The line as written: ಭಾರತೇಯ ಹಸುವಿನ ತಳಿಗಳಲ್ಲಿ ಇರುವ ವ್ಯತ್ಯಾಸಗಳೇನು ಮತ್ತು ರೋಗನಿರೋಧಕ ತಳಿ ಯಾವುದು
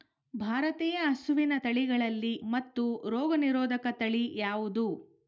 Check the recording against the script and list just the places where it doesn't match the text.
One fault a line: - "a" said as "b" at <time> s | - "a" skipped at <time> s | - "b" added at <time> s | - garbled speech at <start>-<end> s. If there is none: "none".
- "ಇರುವ ವ್ಯತ್ಯಾಸಗಳೇನು" skipped at 2.3 s